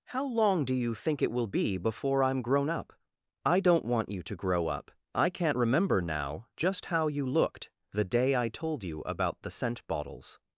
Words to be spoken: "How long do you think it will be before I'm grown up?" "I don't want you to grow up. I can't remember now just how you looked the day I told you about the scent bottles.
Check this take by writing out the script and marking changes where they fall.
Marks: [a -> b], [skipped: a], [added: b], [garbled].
"How long do you think it will be before I'm grown up?" "I don't want you to grow up. I can't remember now just how you looked the day I told you about the scent bottles.